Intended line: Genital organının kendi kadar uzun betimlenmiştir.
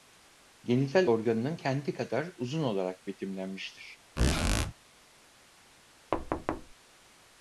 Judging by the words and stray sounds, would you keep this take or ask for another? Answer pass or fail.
fail